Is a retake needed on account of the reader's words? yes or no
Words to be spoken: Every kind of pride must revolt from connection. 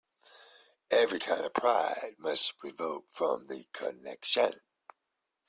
yes